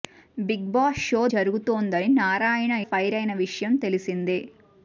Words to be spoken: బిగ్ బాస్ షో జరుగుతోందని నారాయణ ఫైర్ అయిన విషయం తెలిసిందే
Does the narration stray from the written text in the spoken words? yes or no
no